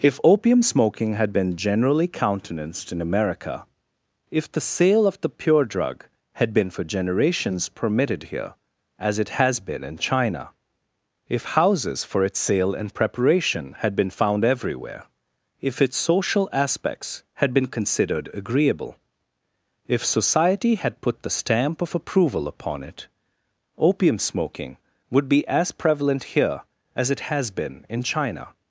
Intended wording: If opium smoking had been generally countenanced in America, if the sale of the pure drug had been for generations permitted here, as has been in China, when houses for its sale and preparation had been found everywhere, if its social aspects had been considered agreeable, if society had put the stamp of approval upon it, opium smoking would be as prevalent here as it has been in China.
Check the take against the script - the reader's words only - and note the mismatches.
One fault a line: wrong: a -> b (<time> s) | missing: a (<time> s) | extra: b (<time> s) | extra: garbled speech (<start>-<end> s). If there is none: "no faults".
extra: it (9.2 s)
wrong: when -> if (11.3 s)